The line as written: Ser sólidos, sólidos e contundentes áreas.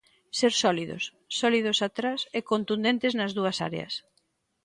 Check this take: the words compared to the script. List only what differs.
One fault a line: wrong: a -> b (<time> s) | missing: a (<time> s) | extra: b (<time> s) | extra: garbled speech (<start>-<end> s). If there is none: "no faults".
extra: atrás (1.9 s)
extra: nas dúas (3.2 s)